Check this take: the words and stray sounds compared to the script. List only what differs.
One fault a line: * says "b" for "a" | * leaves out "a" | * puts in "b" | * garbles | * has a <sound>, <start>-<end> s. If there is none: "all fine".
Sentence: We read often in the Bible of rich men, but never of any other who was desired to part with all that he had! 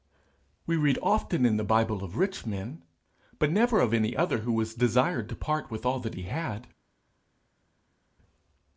all fine